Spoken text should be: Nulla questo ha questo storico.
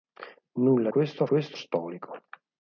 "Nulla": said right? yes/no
yes